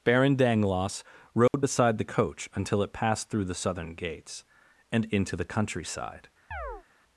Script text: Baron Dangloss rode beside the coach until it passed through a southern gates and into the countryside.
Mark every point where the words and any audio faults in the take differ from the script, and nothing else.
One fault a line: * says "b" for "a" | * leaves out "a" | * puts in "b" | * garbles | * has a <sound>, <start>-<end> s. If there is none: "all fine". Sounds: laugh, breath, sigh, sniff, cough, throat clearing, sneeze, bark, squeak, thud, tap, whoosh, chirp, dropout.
* has a dropout, 1.5-1.5 s
* says "the" for "a"
* has a chirp, 6.5-6.8 s